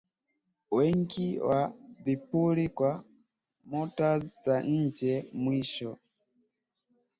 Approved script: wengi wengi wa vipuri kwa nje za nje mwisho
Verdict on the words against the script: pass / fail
fail